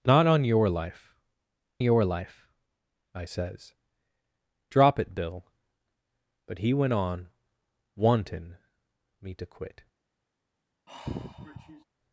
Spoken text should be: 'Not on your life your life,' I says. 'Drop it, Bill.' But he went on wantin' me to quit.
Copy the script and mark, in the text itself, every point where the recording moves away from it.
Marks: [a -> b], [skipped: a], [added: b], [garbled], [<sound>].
'Not on your life your life,' I says. 'Drop it, Bill.' But he went on wantin' me to quit. [sigh]